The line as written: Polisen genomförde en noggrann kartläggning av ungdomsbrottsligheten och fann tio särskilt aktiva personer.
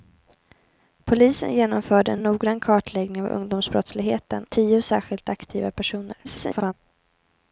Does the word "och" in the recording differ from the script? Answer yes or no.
yes